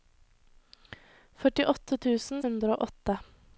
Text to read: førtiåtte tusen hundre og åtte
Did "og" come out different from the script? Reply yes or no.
no